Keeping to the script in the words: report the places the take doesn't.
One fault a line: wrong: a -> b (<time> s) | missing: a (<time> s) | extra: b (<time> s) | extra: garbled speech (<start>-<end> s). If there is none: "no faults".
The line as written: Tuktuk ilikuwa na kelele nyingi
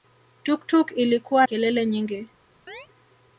missing: na (1.5 s)